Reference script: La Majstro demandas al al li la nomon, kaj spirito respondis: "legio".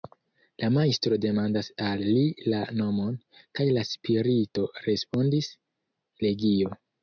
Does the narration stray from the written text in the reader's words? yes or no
yes